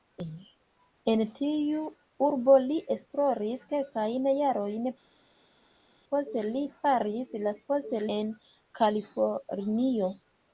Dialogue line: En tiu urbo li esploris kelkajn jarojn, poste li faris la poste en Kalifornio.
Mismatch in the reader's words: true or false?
false